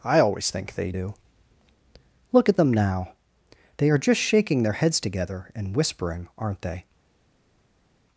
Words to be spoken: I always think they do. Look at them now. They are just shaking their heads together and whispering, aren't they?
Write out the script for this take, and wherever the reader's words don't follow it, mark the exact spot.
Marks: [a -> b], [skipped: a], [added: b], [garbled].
I always think they do. Look at them now. They are just shaking their heads together and whispering, aren't they?